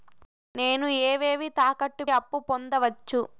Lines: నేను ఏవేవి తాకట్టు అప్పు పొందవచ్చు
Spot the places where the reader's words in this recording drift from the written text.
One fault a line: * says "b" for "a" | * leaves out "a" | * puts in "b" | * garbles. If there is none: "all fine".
all fine